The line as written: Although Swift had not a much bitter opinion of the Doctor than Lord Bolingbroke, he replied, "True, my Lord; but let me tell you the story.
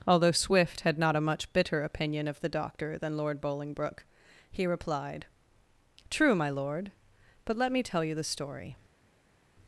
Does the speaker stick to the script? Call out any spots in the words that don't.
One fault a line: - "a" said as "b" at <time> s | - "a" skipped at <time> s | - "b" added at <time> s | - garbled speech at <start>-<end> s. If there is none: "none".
none